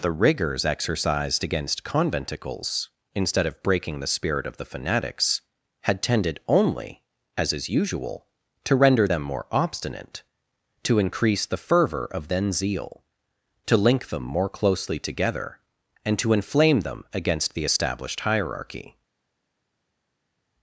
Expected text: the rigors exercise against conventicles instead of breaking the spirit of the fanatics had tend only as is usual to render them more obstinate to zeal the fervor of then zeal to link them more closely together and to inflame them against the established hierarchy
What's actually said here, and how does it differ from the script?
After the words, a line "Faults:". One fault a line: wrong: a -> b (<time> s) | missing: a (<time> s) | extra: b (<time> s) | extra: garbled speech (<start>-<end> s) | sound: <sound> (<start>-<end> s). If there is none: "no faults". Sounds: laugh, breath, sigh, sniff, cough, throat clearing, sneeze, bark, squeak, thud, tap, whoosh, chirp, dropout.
the rigors exercised against conventicles instead of breaking the spirit of the fanatics had tended only as is usual to render them more obstinate to increase the fervor of then zeal to link them more closely together and to inflame them against the established hierarchy
Faults:
wrong: exercise -> exercised (0.7 s)
wrong: tend -> tended (6.0 s)
wrong: zeal -> increase (11.0 s)